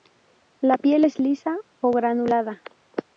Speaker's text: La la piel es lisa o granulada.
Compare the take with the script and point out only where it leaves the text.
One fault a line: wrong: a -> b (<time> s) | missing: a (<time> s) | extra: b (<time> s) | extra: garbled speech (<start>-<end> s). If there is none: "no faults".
missing: la (0.8 s)